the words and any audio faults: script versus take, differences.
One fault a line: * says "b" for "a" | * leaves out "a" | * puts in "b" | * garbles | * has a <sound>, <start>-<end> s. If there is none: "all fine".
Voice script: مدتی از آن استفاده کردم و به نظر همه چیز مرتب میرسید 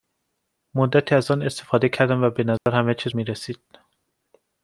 * has a dropout, 2.6-2.7 s
* leaves out "مرتب"